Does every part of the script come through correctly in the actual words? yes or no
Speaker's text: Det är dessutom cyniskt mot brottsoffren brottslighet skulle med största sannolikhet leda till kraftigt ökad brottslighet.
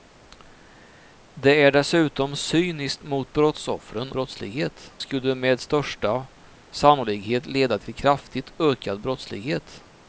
yes